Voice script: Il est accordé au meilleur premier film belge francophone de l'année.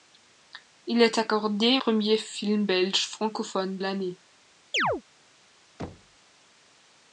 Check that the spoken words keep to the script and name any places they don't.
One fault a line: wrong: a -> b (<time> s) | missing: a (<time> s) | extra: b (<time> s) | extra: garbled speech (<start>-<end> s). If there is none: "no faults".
missing: au meilleur (1.8 s)
missing: de (3.8 s)